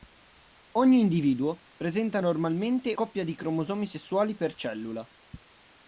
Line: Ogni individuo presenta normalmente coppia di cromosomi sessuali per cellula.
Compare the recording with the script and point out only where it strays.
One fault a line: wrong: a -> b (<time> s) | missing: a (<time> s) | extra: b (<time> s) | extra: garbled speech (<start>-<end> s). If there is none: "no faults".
no faults